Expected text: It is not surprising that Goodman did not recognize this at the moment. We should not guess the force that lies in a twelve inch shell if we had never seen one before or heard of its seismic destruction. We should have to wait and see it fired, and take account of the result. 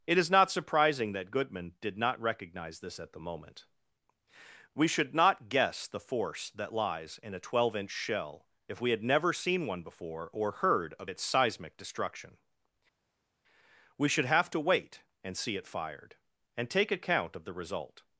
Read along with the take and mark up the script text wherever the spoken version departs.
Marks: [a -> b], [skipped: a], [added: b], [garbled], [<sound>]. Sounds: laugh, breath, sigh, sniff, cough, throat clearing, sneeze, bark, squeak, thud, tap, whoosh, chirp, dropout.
It is not surprising that Goodman did not recognize this at the moment. We should not guess the force that lies in a twelve inch shell if we had never seen one before or heard of its seismic destruction. We should have to wait and see it fired, and take account of the result.